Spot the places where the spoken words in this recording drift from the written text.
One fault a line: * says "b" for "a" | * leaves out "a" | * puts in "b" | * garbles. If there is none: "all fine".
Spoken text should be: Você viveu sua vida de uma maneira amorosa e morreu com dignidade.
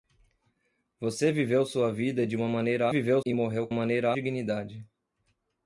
* says "viveu" for "amorosa"
* says "maneira" for "com"